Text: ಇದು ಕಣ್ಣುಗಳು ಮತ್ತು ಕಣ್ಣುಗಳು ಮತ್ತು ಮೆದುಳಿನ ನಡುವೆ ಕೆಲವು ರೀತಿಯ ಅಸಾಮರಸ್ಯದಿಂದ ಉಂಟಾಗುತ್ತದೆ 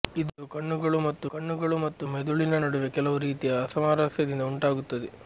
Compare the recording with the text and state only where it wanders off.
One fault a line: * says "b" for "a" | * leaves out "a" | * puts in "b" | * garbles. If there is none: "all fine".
all fine